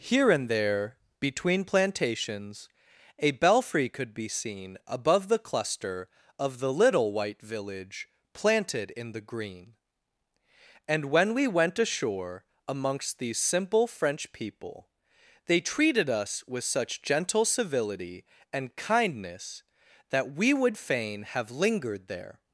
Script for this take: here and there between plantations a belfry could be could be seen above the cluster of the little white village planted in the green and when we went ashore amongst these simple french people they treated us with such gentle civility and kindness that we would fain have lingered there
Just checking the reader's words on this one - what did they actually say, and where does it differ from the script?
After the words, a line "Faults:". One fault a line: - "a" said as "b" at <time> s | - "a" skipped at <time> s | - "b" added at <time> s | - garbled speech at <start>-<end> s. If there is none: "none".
here and there between plantations a belfry could be seen above the cluster of the little white village planted in the green and when we went ashore amongst these simple french people they treated us with such gentle civility and kindness that we would fain have lingered there
Faults:
- "could be" skipped at 4.3 s